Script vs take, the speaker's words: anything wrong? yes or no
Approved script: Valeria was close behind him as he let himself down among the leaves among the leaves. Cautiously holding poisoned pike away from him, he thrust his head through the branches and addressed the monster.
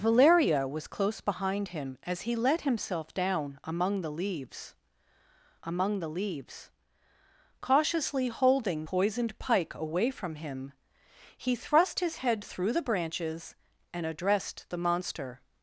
no